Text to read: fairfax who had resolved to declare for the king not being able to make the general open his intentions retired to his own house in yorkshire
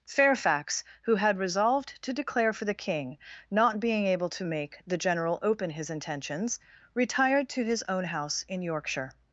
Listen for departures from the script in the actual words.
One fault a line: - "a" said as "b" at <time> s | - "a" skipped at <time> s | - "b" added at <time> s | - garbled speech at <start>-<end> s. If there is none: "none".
none